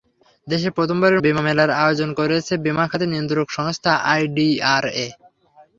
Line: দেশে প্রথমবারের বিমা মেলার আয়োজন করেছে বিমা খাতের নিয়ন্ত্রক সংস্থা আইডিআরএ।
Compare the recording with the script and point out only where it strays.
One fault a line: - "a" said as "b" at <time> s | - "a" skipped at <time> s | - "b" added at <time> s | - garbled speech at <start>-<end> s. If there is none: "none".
none